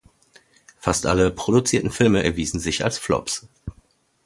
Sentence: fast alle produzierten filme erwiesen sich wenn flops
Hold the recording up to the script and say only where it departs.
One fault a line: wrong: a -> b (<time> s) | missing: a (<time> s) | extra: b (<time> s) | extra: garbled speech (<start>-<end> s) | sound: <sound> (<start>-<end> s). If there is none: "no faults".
wrong: wenn -> als (2.8 s)